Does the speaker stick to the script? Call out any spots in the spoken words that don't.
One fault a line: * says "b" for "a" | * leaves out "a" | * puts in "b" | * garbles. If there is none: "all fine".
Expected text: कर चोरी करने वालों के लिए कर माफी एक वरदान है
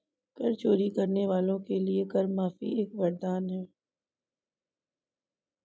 all fine